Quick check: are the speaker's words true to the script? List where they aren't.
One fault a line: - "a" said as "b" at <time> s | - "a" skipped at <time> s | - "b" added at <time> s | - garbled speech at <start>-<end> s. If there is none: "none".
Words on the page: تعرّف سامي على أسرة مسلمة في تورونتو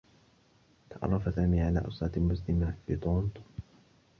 none